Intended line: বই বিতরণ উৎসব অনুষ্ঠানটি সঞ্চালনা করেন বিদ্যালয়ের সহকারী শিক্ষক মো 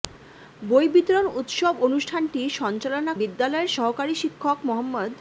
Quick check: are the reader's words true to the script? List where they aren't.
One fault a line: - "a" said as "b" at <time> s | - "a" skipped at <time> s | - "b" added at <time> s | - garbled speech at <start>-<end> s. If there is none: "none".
- "করেন" skipped at 3.1 s